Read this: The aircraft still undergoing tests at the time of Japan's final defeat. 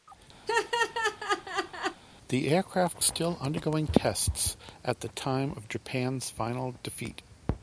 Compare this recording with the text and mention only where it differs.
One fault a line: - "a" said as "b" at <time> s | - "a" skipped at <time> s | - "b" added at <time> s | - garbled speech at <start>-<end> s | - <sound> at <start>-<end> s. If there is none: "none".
- laugh at 0.5-2.0 s